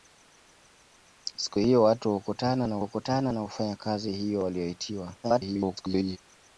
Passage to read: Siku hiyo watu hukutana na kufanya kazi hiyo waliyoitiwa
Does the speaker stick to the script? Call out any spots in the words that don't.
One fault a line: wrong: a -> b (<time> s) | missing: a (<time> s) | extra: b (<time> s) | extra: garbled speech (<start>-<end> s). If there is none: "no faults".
extra: hukutana na (2.8 s)
extra: garbled speech (5.2-6.2 s)